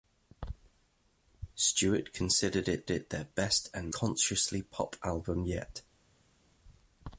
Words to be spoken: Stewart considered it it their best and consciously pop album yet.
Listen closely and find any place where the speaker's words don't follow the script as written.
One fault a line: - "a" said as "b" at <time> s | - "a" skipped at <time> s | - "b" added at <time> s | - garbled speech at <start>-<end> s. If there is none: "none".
none